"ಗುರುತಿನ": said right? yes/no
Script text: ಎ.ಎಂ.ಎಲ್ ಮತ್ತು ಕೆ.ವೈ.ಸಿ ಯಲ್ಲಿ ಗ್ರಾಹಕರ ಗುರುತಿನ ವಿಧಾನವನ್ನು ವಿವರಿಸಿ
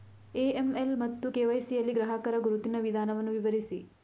yes